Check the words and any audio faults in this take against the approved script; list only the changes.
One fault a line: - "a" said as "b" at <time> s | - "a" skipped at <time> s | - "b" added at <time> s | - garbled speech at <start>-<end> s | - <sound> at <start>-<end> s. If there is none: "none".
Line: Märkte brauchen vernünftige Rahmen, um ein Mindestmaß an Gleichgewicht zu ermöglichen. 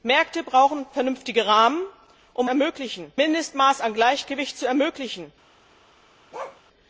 - "ein" said as "ermöglichen" at 2.5 s
- bark at 6.3-6.6 s